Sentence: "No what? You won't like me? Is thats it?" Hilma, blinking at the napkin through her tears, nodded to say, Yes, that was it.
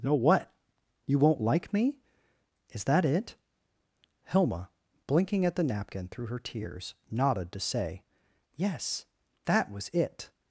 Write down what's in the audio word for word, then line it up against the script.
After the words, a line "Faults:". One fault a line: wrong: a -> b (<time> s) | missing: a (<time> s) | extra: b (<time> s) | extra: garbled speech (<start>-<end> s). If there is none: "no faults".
"No what? You won't like me? Is that it?" Hilma, blinking at the napkin through her tears, nodded to say, Yes, that was it.
Faults:
wrong: thats -> that (2.9 s)